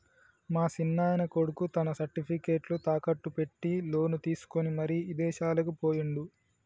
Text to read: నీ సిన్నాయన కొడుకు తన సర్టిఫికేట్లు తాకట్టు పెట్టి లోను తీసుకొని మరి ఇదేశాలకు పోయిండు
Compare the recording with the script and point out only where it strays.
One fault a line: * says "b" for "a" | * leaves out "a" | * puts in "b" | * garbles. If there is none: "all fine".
* says "మా" for "నీ"